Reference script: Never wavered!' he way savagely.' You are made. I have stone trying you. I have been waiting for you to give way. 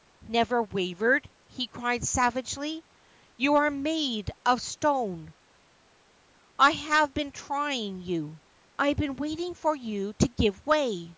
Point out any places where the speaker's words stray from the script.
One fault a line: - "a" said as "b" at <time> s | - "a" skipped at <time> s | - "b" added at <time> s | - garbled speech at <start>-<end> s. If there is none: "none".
- "way" said as "cried" at 1.7 s
- "of stone" added at 4.5 s
- "stone" said as "been" at 7.1 s